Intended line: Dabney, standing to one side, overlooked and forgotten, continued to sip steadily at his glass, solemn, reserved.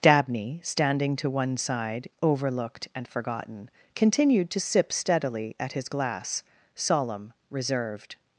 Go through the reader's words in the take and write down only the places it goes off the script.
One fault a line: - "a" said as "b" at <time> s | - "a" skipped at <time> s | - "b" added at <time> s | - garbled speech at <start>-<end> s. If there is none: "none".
none